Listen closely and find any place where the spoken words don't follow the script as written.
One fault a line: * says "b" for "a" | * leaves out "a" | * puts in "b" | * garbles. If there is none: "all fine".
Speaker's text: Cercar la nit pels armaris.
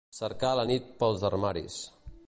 all fine